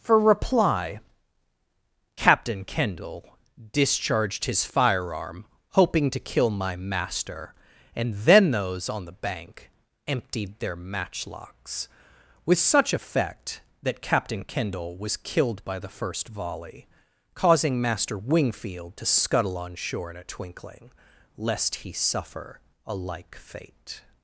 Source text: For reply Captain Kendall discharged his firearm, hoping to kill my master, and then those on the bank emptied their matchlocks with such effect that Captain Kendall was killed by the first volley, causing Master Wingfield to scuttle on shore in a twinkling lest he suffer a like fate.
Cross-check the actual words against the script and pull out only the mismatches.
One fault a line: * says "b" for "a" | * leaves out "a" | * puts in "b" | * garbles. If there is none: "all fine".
all fine